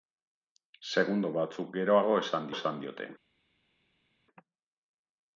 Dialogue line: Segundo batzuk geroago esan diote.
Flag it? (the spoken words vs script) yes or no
yes